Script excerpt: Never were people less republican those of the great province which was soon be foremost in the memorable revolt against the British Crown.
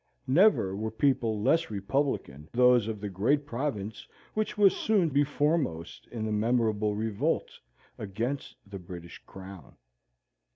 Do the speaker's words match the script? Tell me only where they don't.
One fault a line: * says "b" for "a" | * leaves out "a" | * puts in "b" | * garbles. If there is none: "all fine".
all fine